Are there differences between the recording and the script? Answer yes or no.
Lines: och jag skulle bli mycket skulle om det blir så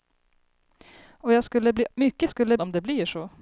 no